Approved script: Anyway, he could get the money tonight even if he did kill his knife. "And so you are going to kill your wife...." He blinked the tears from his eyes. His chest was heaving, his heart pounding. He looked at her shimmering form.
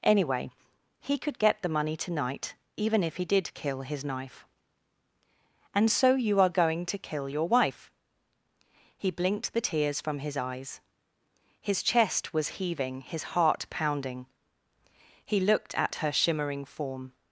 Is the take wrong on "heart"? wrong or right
right